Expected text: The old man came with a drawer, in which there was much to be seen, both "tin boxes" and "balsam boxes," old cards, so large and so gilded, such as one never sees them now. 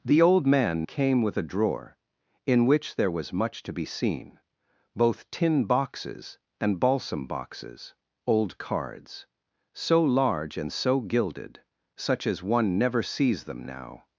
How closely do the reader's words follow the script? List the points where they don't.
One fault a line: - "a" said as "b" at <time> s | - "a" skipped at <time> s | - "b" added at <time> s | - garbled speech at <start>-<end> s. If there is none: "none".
none